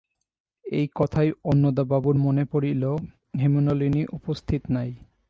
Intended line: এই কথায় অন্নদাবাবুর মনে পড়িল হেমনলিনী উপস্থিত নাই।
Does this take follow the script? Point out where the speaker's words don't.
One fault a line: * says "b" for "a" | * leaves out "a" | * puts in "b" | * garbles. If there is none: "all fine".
all fine